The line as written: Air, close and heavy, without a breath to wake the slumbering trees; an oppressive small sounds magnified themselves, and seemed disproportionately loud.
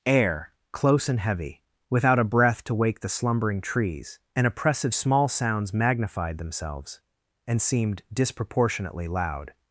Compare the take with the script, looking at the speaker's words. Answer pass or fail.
pass